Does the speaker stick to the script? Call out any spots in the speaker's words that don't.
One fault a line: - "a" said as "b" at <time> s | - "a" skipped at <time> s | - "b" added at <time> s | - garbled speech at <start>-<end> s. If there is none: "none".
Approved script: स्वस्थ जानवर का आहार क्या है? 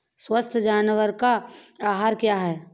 none